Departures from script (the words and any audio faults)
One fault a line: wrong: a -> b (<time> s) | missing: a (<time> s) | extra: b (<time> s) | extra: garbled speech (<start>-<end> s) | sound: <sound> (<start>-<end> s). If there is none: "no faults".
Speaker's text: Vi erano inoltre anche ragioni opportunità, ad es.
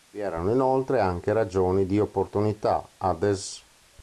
extra: di (1.9 s)